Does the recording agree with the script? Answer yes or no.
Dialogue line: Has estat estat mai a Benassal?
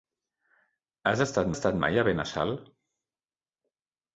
yes